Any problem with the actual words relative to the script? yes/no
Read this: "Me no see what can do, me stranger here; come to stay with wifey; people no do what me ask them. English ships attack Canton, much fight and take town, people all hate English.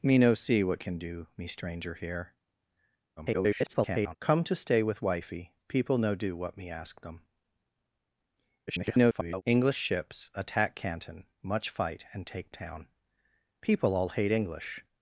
yes